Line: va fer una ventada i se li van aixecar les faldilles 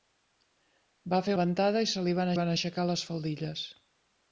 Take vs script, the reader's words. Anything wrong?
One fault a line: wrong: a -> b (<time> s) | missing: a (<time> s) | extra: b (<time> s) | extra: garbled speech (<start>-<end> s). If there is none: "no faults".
missing: una (1.3 s)
extra: van (2.4 s)